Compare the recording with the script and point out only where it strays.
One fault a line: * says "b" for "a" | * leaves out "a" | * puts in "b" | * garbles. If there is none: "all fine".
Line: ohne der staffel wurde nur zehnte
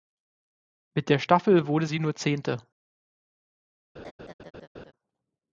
* says "mit" for "ohne"
* puts in "sie"